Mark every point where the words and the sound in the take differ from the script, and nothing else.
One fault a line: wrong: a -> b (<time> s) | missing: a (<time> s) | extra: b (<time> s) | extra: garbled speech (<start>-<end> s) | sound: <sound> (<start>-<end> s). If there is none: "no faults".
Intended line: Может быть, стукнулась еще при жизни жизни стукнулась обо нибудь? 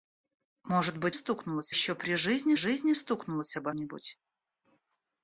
no faults